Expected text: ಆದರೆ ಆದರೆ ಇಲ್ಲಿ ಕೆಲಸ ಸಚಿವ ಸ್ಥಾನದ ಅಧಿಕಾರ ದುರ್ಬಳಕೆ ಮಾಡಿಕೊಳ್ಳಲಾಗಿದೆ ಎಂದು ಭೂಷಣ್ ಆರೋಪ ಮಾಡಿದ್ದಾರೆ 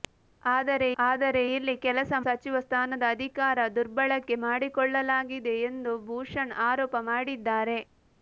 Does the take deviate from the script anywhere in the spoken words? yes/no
no